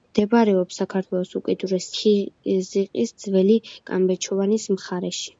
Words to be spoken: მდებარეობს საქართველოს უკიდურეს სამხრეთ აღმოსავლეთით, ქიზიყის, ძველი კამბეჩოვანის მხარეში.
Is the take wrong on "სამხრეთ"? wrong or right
wrong